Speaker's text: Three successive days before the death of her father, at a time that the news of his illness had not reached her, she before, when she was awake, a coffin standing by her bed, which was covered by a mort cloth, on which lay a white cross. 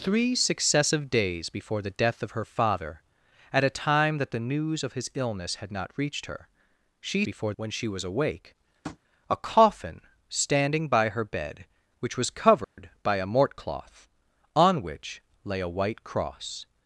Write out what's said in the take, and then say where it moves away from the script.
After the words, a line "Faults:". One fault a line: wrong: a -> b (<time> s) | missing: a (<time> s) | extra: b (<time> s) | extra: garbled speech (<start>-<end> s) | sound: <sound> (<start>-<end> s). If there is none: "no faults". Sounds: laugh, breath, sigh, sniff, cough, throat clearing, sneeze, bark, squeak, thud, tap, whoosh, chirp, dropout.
Three successive days before the death of her father, at a time that the news of his illness had not reached her, she before, when she was awake, a coffin standing by her bed, which was covered by a mort cloth, on which lay a white cross.
Faults:
sound: tap (8.8-9.0 s)
sound: dropout (12.6-12.8 s)